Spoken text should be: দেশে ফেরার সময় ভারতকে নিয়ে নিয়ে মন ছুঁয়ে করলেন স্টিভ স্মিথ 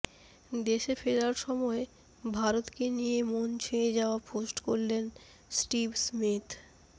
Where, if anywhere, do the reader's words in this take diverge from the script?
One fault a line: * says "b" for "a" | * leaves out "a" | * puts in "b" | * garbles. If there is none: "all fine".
* leaves out "নিয়ে"
* puts in "যাওয়া পোস্ট"